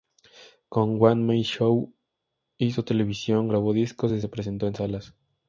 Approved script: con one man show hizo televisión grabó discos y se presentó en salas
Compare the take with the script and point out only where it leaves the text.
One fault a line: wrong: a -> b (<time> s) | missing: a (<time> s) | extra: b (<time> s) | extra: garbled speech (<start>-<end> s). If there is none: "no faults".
no faults